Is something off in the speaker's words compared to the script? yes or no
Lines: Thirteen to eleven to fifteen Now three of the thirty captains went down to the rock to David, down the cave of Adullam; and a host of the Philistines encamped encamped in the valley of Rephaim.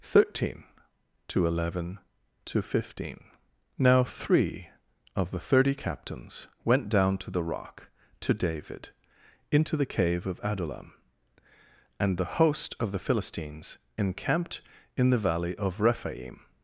yes